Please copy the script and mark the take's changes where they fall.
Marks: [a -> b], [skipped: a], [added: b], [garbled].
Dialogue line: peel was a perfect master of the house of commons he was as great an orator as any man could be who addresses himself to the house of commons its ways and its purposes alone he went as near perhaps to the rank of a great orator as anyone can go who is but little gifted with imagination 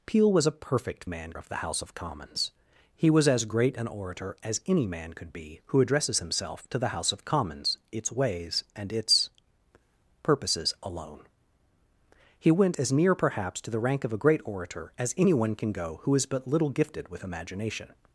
peel was a perfect [master -> man] of the house of commons he was as great an orator as any man could be who addresses himself to the house of commons its ways and its purposes alone he went as near perhaps to the rank of a great orator as anyone can go who is but little gifted with imagination